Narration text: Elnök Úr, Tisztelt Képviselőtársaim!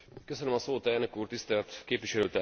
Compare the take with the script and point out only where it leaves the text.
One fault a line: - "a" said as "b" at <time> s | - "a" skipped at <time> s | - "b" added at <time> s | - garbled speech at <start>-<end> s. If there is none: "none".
none